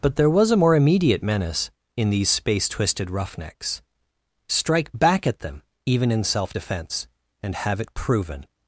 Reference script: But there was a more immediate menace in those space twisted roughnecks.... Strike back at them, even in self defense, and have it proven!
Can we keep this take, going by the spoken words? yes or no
no